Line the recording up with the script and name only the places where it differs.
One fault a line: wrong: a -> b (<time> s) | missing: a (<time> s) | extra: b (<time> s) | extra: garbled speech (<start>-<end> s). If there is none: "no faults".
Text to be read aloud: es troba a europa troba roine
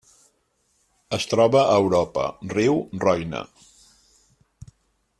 wrong: troba -> riu (2.5 s)